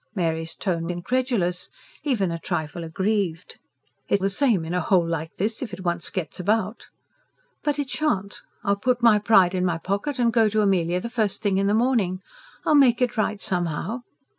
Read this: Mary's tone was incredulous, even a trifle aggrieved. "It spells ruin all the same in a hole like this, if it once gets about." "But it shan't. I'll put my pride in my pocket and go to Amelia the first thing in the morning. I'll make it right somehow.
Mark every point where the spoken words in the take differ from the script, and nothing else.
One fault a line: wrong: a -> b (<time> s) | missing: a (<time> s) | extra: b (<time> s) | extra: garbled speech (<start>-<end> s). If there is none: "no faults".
missing: was (0.9 s)
missing: spells ruin all (4.2 s)